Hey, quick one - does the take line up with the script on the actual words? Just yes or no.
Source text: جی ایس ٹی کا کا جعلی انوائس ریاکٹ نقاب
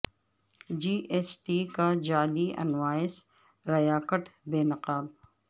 no